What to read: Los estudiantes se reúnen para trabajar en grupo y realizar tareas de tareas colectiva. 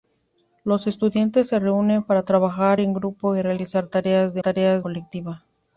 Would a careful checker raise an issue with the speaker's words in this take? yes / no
no